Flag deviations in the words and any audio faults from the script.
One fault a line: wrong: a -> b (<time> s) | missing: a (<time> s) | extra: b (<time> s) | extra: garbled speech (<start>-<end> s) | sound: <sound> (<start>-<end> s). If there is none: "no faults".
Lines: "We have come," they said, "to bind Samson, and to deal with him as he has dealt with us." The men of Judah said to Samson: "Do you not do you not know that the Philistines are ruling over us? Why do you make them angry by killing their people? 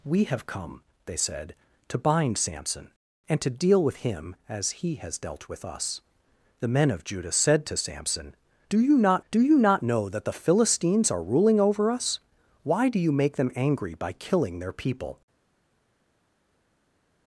no faults